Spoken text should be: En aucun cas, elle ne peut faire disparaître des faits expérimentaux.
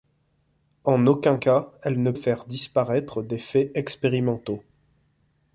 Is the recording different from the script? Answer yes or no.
yes